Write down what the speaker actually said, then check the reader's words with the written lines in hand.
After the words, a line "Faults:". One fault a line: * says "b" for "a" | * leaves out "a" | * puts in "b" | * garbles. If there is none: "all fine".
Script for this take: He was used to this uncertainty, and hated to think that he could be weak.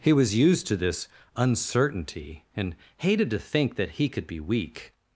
He was used to this uncertainty, and hated to think that he could be weak.
Faults:
all fine